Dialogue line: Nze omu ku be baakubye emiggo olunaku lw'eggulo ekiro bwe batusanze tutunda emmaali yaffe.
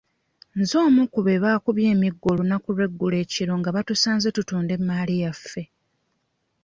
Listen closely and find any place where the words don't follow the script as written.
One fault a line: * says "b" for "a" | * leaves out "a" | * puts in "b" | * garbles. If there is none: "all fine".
* says "nga" for "bwe"